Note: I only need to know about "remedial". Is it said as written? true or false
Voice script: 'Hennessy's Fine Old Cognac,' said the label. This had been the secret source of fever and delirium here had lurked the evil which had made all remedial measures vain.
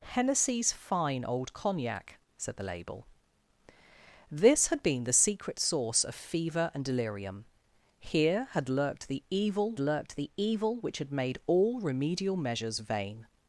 true